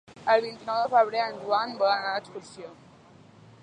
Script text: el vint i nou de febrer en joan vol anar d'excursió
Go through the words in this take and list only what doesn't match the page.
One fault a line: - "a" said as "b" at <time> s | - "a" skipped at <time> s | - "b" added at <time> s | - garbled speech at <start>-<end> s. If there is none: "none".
none